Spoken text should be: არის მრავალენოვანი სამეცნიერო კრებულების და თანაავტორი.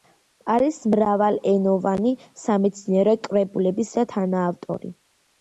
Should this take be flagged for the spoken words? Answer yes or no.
no